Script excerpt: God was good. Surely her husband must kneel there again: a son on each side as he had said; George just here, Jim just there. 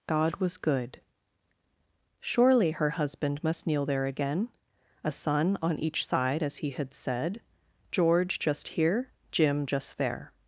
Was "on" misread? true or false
false